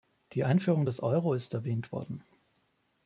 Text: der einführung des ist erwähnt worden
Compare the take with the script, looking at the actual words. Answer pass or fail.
fail